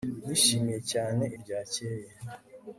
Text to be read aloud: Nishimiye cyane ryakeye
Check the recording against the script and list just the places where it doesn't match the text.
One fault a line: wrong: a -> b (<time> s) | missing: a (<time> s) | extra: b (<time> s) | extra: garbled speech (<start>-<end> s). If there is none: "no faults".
no faults